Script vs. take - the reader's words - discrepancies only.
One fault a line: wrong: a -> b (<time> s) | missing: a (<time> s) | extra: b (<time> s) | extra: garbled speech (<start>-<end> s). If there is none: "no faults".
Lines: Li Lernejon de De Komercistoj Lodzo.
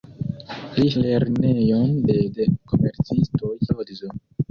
no faults